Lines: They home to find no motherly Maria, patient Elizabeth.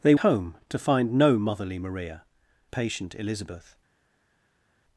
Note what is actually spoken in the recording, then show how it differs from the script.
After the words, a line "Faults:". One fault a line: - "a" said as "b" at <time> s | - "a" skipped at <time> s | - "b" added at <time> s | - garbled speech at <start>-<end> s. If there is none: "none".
They home to find no motherly Maria, patient Elizabeth.
Faults:
none